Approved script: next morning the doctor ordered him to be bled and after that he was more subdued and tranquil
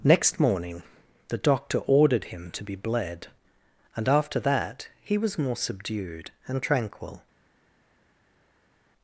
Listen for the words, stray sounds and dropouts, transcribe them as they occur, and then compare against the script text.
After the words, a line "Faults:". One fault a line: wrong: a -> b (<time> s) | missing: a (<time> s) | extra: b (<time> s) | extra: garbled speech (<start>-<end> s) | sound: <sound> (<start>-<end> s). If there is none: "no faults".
next morning the doctor ordered him to be bled and after that he was more subdued and tranquil
Faults:
no faults